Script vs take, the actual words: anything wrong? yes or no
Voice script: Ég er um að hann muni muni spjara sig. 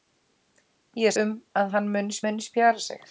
no